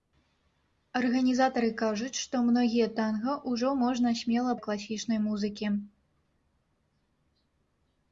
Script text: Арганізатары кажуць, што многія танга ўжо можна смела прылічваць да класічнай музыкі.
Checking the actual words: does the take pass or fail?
fail